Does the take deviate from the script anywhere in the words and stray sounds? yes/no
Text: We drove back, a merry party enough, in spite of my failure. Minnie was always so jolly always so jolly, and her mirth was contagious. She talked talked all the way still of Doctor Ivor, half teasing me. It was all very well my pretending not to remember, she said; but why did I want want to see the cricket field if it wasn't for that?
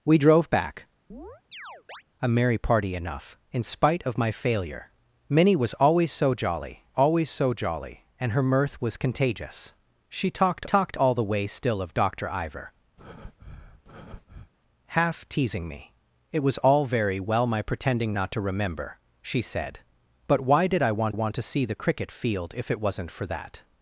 yes